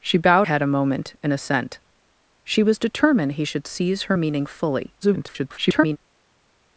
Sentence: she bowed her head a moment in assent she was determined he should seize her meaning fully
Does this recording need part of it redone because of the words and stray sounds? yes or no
yes